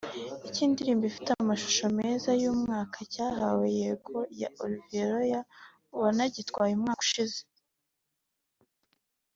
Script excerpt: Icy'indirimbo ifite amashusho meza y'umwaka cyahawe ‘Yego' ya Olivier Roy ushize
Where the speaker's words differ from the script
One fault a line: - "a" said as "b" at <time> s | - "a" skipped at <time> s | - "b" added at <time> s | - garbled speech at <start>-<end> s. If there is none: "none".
- "wanagitwaye umwaka" added at 6.0 s